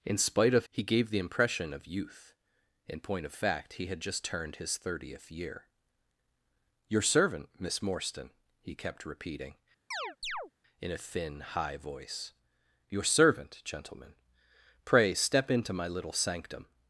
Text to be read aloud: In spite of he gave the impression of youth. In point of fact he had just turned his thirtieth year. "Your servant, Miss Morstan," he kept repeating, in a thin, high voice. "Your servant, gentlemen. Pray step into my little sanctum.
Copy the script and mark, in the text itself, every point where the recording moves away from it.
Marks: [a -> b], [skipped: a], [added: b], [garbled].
In spite of he gave the impression of youth. In point of fact he had just turned his thirtieth year. "Your servant, Miss Morstan," he kept repeating, in a thin, high voice. "Your servant, gentlemen. Pray step into my little sanctum.